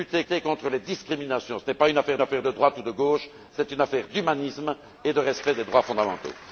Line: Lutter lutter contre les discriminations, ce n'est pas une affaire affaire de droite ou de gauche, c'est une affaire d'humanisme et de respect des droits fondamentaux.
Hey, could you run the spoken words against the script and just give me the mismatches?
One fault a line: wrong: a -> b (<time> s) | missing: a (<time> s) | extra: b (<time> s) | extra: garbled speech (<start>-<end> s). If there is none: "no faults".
no faults